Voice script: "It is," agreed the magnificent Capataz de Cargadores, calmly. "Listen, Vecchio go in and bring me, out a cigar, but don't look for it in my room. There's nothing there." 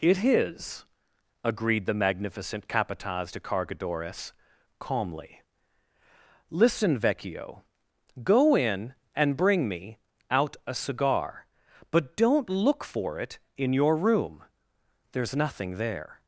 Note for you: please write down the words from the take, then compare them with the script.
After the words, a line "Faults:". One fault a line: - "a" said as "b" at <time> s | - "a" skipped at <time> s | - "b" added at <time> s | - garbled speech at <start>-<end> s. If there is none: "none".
"It is," agreed the magnificent Capataz de Cargadores, calmly. "Listen, Vecchio go in and bring me, out a cigar, but don't look for it in your room. There's nothing there."
Faults:
- "my" said as "your" at 13.7 s